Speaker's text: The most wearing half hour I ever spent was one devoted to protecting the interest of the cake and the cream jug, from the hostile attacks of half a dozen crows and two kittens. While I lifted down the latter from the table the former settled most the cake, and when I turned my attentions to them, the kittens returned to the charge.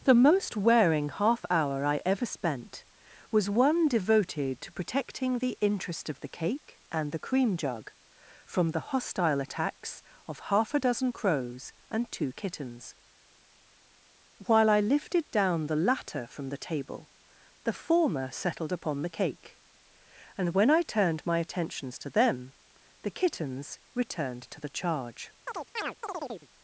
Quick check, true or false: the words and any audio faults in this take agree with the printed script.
false